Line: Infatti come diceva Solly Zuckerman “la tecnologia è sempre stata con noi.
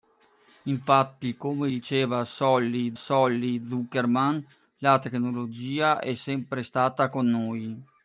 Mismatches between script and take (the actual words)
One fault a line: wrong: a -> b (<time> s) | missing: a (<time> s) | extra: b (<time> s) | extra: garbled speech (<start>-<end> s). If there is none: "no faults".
extra: Solly (2.9 s)